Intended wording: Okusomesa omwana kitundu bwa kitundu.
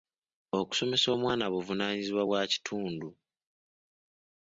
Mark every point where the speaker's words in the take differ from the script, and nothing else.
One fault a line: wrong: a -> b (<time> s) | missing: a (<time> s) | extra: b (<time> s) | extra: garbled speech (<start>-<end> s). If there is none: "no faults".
wrong: kitundu -> buvunaanyizibwa (1.5 s)